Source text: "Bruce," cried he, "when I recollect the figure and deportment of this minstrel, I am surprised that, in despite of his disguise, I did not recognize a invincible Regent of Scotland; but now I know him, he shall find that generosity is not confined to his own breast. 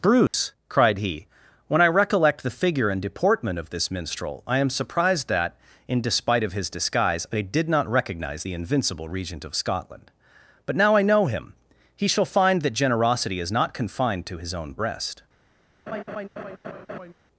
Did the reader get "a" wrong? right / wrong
wrong